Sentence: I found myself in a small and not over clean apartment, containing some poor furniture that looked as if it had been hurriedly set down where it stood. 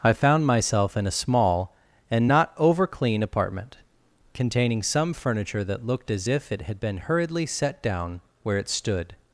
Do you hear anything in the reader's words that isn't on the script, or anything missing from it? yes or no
yes